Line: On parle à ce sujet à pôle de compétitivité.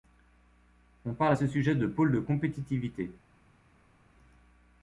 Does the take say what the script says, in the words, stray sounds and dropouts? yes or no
no